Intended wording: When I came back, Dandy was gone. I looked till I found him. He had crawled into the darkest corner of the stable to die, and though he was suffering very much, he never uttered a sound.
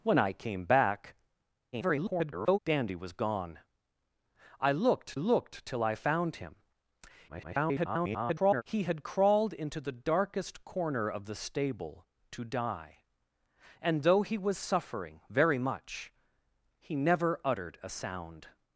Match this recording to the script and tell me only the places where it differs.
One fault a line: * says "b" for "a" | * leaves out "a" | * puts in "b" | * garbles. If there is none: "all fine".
* garbles
* puts in "looked"
* garbles